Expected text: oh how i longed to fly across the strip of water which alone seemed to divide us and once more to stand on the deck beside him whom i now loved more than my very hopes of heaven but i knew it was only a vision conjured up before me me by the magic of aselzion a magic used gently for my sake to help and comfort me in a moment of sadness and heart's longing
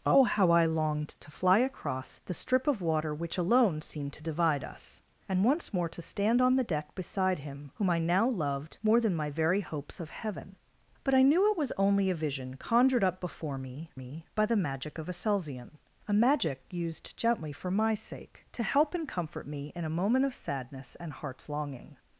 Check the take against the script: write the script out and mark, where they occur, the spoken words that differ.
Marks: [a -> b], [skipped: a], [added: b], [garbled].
oh how i longed to fly across the strip of water which alone seemed to divide us and once more to stand on the deck beside him whom i now loved more than my very hopes of heaven but i knew it was only a vision conjured up before me me by the magic of aselzion a magic used gently for my sake to help and comfort me in a moment of sadness and heart's longing